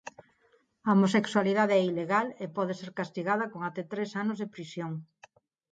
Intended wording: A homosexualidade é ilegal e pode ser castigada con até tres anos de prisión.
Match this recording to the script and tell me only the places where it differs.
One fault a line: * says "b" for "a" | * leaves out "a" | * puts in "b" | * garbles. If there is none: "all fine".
all fine